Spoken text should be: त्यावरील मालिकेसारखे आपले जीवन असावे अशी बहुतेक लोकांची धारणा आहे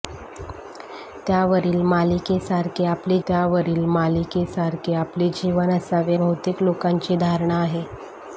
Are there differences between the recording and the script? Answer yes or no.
yes